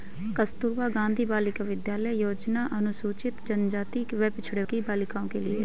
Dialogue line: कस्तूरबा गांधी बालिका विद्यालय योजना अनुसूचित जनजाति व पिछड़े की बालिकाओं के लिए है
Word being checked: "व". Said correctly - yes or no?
yes